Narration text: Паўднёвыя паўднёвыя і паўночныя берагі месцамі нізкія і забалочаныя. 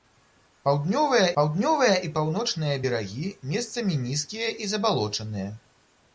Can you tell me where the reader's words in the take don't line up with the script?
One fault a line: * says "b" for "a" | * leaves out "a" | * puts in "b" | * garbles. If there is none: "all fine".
all fine